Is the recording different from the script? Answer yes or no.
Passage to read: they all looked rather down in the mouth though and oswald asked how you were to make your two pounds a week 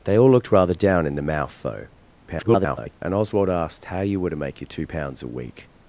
yes